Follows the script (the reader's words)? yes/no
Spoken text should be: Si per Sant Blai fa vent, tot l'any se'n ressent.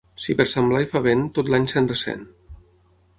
yes